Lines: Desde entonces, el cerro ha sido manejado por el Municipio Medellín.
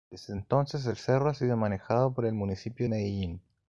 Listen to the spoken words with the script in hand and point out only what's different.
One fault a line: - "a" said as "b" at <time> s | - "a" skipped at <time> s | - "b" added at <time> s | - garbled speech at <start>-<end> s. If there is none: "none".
none